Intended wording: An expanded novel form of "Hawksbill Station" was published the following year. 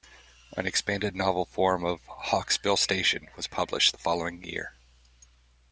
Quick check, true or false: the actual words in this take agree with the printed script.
true